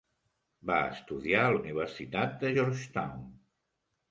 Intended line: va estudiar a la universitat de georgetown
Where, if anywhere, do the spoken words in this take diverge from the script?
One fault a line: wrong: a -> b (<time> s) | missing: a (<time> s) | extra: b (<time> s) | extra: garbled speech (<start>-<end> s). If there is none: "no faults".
no faults